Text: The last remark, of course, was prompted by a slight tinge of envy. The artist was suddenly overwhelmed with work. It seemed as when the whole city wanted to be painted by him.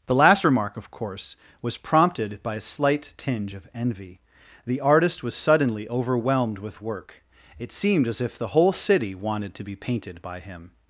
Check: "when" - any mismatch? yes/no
yes